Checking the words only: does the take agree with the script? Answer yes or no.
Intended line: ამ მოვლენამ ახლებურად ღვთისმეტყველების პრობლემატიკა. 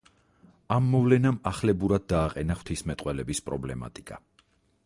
no